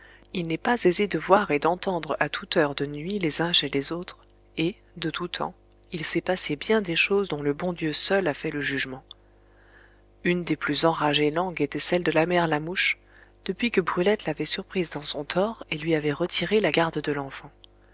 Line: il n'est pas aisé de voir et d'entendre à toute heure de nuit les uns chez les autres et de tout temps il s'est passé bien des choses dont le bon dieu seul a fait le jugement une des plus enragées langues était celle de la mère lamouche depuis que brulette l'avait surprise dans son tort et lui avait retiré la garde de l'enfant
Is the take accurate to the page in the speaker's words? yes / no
yes